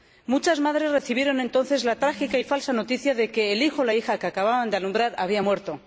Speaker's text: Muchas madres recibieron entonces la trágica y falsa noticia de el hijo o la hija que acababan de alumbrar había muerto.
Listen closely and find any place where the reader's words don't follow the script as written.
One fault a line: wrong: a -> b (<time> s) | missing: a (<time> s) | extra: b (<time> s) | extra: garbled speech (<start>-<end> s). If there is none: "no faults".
extra: que (3.3 s)